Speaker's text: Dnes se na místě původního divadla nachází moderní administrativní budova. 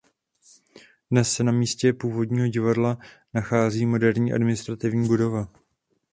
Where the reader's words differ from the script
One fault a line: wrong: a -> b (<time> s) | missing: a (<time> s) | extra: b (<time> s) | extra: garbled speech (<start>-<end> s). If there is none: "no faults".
no faults